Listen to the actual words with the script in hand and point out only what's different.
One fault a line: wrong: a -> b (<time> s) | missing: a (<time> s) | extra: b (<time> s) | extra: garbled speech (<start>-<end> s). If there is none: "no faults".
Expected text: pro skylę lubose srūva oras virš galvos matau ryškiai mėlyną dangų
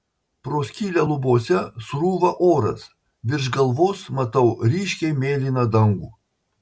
no faults